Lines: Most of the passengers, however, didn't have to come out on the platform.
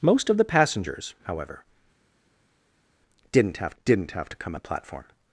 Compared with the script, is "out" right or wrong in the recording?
wrong